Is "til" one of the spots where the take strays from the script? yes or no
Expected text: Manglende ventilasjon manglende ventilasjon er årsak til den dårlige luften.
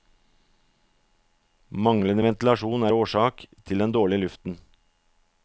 no